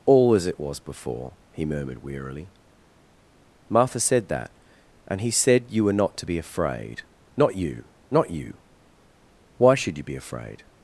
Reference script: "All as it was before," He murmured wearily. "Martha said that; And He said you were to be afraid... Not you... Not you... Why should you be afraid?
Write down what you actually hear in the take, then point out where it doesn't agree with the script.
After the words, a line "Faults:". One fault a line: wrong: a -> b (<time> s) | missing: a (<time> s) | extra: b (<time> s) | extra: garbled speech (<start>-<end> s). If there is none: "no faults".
"All as it was before," He murmured wearily. "Martha said that; And He said you were not to be afraid... Not you... Not you... Why should you be afraid?
Faults:
extra: not (5.9 s)